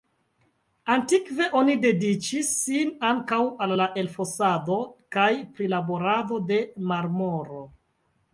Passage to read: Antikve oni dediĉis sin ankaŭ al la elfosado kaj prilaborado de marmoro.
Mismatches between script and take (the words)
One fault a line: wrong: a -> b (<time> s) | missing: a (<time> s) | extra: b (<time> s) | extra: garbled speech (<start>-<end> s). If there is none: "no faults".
no faults